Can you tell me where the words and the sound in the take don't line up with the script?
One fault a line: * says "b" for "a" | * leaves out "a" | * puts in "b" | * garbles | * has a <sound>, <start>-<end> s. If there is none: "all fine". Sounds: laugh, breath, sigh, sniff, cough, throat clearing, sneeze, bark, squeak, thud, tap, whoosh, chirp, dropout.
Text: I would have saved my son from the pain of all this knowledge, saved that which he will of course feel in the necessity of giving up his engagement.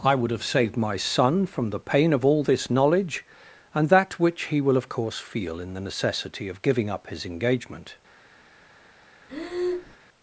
* says "and" for "saved"
* has a breath, 9.3-10.0 s